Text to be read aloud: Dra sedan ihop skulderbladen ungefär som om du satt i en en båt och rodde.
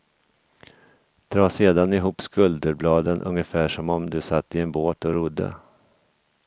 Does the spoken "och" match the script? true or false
true